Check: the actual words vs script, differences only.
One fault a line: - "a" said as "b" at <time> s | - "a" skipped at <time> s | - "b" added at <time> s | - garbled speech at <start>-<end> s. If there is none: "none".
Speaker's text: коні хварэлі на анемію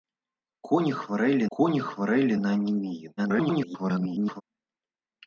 - "коні хварэлі" added at 1.6 s
- garbled speech at 3.2-4.4 s